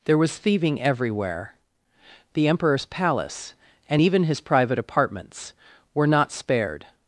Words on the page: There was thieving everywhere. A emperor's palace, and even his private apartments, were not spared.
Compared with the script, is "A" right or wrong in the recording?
wrong